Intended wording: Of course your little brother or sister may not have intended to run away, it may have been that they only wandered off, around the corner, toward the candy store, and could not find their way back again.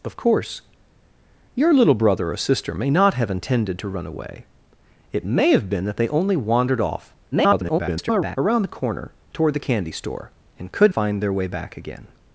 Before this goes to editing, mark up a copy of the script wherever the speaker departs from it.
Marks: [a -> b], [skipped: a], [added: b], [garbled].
Of course your little brother or sister may not have intended to run away, it may have been that they only wandered off, [garbled] around the corner, toward the candy store, and could [skipped: not] find their way back again.